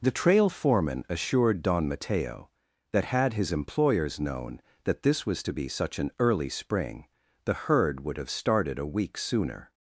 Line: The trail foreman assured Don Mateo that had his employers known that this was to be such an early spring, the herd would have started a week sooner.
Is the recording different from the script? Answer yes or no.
no